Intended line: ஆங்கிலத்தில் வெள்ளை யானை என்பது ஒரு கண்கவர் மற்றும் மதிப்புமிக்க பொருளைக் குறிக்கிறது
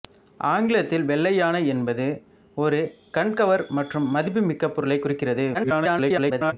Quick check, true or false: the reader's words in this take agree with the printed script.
false